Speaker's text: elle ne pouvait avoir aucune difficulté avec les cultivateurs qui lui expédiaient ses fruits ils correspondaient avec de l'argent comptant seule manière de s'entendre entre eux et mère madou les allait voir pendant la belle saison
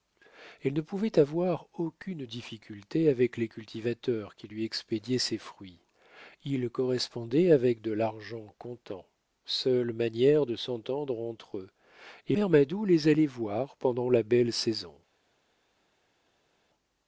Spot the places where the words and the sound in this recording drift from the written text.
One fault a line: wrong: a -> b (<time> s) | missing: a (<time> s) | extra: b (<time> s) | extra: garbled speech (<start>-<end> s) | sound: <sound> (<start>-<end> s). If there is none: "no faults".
no faults